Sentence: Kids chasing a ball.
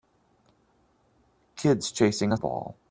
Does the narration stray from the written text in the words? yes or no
no